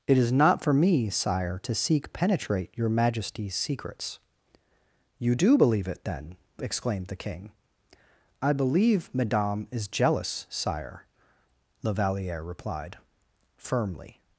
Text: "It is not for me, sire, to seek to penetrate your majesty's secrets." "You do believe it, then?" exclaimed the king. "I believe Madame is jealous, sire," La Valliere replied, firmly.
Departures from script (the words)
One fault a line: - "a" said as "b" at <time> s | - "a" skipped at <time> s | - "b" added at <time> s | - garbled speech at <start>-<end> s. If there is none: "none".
- "to" skipped at 2.1 s